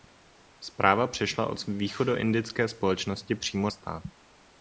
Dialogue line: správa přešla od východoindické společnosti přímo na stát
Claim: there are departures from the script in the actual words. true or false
true